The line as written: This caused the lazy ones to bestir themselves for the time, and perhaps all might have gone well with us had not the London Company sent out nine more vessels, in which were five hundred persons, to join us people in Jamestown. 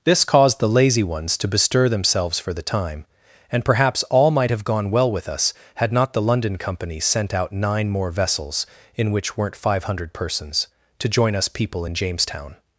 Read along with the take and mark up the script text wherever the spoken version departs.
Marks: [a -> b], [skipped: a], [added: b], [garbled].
This caused the lazy ones to bestir themselves for the time, and perhaps all might have gone well with us had not the London Company sent out nine more vessels, in which [were -> weren't] five hundred persons, to join us people in Jamestown.